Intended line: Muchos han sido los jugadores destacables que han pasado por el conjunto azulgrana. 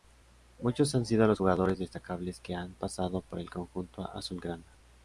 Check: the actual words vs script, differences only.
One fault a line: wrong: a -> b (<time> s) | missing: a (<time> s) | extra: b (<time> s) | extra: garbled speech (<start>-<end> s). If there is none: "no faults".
no faults